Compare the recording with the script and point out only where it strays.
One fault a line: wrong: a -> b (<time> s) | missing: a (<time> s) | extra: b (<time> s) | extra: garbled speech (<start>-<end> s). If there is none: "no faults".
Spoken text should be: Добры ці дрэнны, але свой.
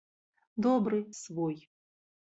missing: ці дрэнны але (1.0 s)